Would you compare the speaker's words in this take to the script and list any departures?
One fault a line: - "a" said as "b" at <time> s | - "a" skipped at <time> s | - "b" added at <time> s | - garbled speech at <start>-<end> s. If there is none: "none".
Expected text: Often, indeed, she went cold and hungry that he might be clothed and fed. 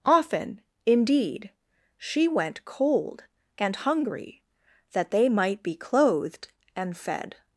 - "he" said as "they" at 5.1 s